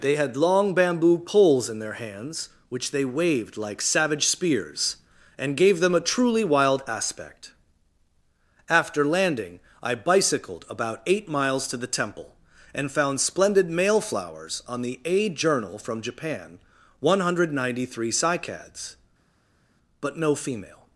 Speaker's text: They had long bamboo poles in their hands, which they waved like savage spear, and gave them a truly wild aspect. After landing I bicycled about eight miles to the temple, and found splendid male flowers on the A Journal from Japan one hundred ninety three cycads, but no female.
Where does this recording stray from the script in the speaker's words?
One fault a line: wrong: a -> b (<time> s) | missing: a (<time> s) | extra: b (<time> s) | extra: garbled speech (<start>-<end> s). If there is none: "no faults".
wrong: spear -> spears (4.2 s)